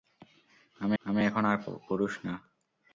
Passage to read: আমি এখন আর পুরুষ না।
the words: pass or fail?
fail